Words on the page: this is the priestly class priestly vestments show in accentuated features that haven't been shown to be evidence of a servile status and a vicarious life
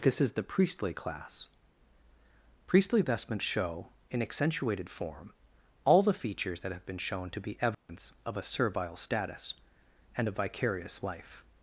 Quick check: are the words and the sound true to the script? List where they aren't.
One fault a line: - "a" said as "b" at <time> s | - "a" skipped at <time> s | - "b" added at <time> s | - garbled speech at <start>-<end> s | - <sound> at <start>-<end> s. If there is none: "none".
- "form all the" added at 4.9 s
- "haven't" said as "have" at 6.7 s
- dropout at 7.7-7.9 s